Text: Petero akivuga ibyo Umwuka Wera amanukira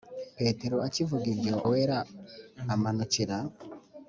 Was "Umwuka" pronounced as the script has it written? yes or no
no